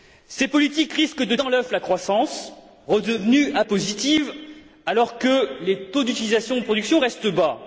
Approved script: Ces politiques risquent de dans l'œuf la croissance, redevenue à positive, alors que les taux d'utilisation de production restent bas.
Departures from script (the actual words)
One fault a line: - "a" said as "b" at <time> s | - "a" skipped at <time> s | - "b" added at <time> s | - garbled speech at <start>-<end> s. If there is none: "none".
none